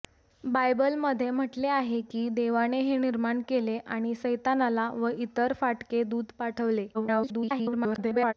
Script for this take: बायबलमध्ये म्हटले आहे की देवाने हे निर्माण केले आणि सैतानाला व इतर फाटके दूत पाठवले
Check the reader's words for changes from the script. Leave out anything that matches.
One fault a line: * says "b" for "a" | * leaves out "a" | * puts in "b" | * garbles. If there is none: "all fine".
* garbles